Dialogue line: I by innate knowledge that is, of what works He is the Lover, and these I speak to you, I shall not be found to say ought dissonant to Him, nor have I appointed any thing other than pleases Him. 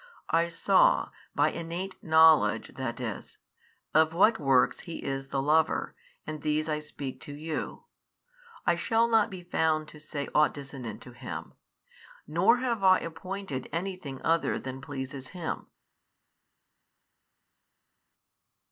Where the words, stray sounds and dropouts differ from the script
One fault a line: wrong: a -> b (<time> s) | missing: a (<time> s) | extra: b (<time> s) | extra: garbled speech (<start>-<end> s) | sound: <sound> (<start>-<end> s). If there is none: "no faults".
extra: saw (0.5 s)